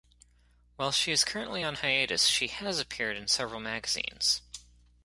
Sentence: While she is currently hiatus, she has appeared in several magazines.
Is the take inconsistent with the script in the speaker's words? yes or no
yes